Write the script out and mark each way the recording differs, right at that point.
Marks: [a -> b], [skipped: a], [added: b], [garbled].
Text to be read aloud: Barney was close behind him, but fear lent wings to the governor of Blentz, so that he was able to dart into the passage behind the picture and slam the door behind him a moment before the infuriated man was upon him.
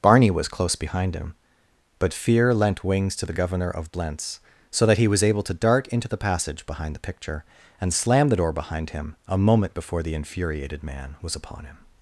Barney was close behind him, but fear lent wings to the governor of Blentz, so that he was able to dart into the passage behind the picture and slam the door behind him a moment before the infuriated man was upon him.